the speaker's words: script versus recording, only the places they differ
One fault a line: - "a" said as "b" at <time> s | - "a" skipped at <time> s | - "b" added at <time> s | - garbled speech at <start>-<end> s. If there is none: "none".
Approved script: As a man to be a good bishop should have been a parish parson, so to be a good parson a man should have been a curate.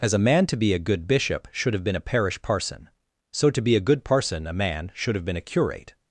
none